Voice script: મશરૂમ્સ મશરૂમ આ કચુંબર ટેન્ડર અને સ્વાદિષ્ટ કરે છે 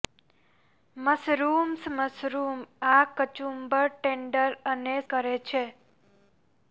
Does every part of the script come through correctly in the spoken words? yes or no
no